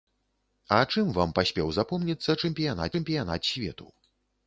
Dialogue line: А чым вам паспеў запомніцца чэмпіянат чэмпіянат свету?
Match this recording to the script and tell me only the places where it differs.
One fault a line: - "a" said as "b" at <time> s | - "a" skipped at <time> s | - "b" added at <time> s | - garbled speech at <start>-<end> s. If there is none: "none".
none